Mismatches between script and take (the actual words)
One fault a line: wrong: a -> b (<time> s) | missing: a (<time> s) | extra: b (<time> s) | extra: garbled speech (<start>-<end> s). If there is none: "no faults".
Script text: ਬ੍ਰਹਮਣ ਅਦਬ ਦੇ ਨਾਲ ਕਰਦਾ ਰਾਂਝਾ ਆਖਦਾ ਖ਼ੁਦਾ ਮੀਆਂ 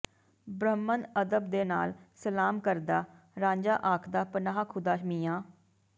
extra: ਸਲਾਮ (2.2 s)
extra: ਪਨਾਹ (4.3 s)